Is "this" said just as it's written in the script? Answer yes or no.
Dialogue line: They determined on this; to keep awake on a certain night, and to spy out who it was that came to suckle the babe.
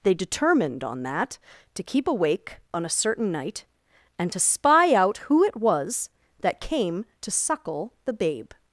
no